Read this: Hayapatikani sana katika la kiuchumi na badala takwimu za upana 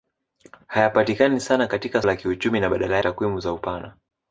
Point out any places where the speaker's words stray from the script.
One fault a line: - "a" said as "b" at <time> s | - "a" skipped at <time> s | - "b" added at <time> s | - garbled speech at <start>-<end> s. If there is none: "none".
none